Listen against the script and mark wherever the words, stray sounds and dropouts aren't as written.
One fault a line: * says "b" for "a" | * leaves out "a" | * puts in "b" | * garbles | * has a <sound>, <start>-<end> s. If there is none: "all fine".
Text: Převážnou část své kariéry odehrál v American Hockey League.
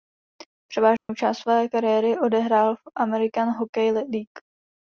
* has a dropout, 1.0-1.1 s